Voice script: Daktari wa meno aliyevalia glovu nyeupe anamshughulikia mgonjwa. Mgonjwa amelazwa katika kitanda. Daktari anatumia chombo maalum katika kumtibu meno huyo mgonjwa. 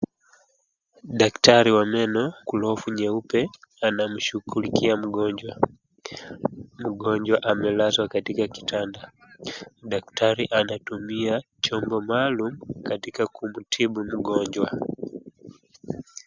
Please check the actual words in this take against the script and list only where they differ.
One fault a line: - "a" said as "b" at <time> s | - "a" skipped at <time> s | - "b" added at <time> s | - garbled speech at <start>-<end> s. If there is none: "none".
- "aliyevalia" skipped at 2.2 s
- "meno huyo" skipped at 14.0 s